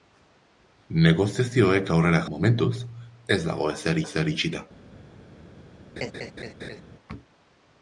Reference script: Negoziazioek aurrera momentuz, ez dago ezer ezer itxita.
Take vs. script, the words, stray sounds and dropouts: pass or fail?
fail